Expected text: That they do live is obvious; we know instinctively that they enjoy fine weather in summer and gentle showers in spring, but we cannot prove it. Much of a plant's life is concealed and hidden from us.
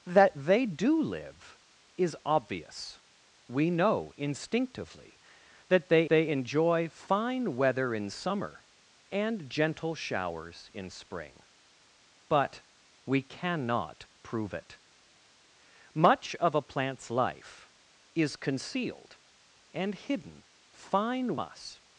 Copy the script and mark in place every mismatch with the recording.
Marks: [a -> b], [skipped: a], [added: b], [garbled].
That they do live is obvious; we know instinctively that they [added: they] enjoy fine weather in summer and gentle showers in spring, but we cannot prove it. Much of a plant's life is concealed and hidden [from -> fine] us.